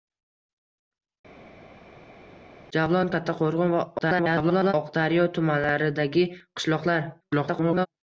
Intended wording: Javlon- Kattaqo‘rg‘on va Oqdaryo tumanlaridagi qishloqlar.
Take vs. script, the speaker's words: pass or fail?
fail